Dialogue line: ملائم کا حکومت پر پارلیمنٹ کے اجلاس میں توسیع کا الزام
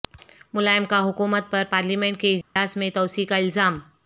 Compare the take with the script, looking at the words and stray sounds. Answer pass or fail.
fail